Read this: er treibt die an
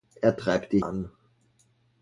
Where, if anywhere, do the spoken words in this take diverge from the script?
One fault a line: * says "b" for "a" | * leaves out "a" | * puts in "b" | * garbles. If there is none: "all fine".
all fine